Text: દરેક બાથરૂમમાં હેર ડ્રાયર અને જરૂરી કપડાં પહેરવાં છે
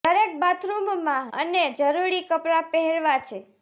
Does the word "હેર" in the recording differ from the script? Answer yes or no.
yes